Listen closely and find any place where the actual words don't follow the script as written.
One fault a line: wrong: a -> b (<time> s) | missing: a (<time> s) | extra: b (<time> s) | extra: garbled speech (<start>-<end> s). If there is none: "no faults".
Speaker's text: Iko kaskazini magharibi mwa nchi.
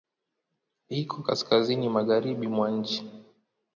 no faults